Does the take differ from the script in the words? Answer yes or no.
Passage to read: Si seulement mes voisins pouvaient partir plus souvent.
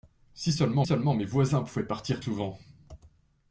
yes